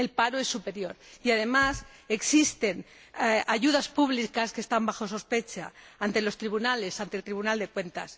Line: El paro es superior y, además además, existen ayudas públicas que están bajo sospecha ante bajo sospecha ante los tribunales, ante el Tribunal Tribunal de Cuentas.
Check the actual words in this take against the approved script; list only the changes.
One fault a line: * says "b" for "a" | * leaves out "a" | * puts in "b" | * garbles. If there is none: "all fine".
* leaves out "además"
* leaves out "bajo sospecha ante"
* leaves out "Tribunal"